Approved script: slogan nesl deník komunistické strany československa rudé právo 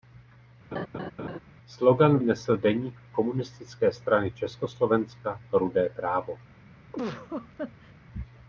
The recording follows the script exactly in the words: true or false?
true